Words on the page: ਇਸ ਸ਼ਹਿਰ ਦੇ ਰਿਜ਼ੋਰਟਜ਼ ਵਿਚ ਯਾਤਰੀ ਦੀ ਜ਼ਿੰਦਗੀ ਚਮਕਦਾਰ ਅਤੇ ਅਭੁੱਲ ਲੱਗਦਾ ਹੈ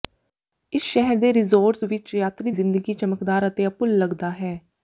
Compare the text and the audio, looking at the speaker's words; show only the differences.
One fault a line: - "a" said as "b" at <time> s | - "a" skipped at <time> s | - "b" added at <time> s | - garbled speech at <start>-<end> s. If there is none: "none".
- "ਦੀ" skipped at 2.5 s